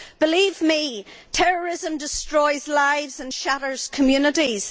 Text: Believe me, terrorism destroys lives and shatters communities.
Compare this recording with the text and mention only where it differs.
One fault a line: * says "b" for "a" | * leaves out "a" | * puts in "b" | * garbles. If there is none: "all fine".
all fine